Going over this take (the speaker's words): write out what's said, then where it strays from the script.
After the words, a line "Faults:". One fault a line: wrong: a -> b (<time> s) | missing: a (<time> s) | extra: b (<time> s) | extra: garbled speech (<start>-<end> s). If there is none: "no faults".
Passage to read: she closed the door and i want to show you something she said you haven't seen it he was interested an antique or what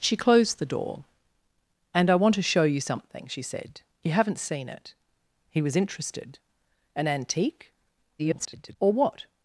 she closed the door and i want to show you something she said you haven't seen it he was interested an antique [garbled] or what
Faults:
extra: garbled speech (8.2-8.8 s)